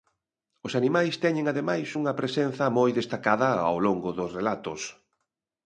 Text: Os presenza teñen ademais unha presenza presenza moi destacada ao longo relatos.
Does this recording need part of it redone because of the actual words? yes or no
yes